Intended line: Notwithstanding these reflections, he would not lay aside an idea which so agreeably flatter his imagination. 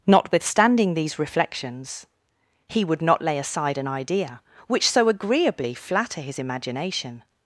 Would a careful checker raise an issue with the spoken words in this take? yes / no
no